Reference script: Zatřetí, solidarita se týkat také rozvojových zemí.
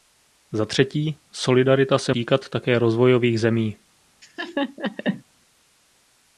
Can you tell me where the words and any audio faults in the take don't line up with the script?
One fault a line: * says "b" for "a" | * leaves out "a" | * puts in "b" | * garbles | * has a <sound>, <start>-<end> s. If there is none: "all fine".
* has a laugh, 4.2-5.2 s